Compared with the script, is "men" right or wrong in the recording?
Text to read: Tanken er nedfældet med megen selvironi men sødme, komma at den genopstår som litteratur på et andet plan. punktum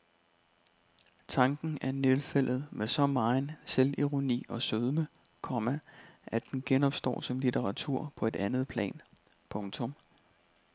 wrong